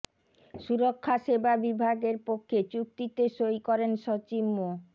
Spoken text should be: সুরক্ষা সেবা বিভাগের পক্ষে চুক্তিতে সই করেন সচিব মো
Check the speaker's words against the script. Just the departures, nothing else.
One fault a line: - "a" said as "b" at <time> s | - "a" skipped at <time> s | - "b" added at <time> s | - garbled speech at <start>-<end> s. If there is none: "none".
none